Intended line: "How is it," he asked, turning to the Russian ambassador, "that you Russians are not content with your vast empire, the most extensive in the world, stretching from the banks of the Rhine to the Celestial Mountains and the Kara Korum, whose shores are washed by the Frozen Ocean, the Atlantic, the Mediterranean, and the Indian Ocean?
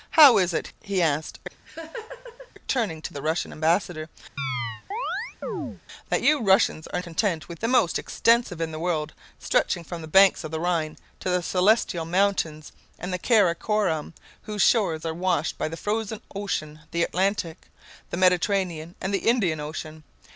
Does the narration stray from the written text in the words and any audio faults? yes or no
yes